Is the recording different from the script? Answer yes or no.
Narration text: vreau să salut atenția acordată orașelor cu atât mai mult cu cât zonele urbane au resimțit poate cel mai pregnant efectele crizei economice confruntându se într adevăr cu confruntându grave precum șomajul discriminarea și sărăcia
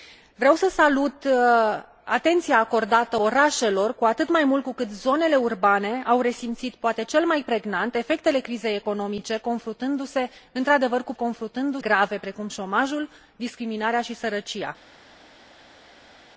no